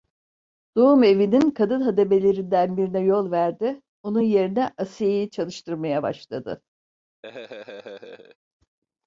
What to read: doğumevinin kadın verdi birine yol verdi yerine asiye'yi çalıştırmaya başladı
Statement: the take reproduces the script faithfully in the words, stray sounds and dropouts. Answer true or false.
false